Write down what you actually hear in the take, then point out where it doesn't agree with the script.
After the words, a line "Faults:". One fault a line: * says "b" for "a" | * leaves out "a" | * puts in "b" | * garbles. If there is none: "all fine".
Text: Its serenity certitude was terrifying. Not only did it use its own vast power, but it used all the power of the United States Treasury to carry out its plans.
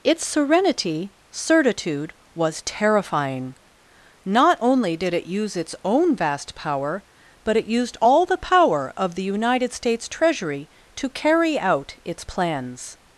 Its serenity certitude was terrifying. Not only did it use its own vast power, but it used all the power of the United States Treasury to carry out its plans.
Faults:
all fine